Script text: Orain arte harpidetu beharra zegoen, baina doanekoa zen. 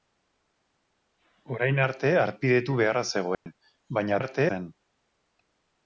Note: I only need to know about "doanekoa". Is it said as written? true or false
false